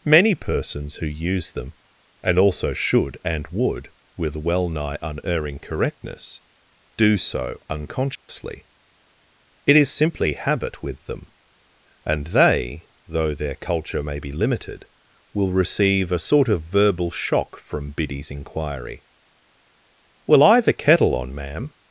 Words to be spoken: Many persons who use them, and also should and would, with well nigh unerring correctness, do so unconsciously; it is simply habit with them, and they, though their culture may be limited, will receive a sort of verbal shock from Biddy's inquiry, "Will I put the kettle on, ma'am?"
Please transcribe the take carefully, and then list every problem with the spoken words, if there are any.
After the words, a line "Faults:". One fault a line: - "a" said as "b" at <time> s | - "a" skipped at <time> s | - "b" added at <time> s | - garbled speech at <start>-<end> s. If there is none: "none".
Many persons who use them, and also should and would, with well nigh unerring correctness, do so unconsciously; it is simply habit with them, and they, though their culture may be limited, will receive a sort of verbal shock from Biddy's inquiry, "Will I the kettle on, ma'am?"
Faults:
- "put" skipped at 20.6 s